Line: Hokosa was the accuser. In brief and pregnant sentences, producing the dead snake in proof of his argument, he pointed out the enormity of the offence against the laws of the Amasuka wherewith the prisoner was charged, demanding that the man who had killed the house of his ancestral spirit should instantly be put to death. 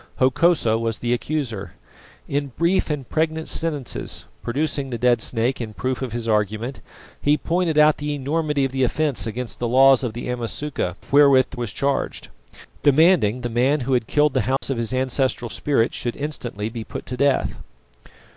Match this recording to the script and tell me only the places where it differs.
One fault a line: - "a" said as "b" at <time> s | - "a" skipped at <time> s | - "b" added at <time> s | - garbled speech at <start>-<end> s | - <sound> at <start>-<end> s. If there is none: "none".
- "prisoner" skipped at 11.6 s
- "that" skipped at 13.4 s
- dropout at 14.6-14.6 s